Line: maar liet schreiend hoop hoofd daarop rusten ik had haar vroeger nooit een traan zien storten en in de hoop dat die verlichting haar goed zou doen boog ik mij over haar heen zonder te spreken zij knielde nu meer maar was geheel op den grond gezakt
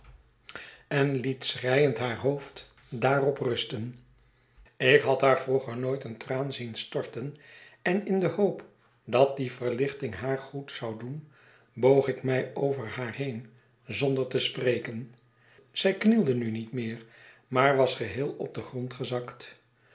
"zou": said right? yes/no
yes